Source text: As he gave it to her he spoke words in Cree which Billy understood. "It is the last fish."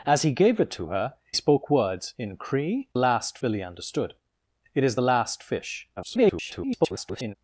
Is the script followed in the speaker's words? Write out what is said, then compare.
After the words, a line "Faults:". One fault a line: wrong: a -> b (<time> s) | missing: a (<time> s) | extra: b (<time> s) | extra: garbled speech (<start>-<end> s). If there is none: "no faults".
As he gave it to her spoke words in Cree last Billy understood. "It is the last fish." [garbled]
Faults:
missing: he (1.1 s)
wrong: which -> last (3.0 s)
extra: garbled speech (6.0-7.4 s)